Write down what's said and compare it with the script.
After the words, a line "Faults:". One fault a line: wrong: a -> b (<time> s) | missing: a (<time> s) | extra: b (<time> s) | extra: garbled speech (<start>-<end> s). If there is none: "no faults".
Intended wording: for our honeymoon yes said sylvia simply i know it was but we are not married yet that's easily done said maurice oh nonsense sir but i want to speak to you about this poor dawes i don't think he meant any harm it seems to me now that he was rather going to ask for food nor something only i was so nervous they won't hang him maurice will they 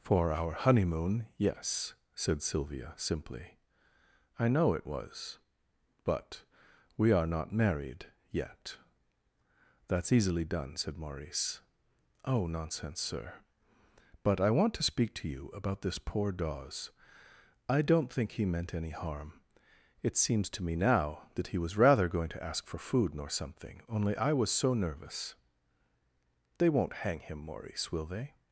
for our honeymoon yes said sylvia simply i know it was but we are not married yet that's easily done said maurice oh nonsense sir but i want to speak to you about this poor dawes i don't think he meant any harm it seems to me now that he was rather going to ask for food nor something only i was so nervous they won't hang him maurice will they
Faults:
no faults